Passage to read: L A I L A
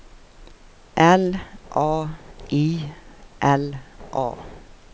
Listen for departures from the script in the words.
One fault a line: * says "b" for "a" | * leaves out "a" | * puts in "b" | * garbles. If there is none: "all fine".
all fine